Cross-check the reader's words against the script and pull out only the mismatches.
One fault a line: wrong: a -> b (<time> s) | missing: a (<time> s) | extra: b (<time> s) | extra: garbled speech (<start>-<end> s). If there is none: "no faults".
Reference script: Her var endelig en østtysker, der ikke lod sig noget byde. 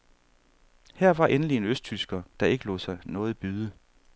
no faults